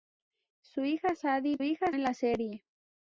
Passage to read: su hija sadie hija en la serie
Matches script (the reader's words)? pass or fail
pass